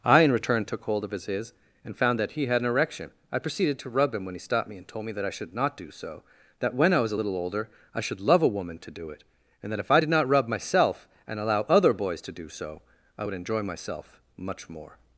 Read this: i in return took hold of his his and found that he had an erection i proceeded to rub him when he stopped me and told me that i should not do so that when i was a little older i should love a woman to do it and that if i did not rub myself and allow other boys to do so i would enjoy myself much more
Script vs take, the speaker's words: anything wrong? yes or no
no